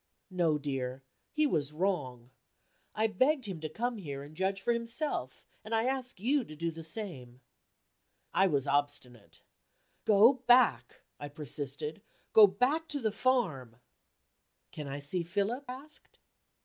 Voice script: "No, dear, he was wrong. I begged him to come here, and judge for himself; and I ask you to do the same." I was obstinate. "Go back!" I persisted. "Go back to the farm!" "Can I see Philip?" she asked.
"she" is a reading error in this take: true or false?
true